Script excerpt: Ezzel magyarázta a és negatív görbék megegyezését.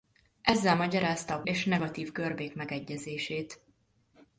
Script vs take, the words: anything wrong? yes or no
no